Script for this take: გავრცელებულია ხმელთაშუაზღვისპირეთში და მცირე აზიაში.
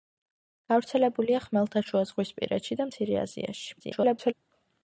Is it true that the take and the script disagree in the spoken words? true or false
true